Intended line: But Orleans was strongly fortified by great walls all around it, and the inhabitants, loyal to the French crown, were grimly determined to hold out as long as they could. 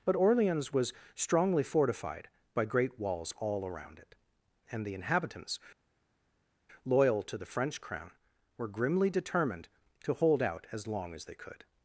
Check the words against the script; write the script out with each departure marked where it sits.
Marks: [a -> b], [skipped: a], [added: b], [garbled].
But Orleans was strongly fortified by great walls all around it, and the inhabitants, loyal to the French crown, were grimly determined to hold out as long as they could.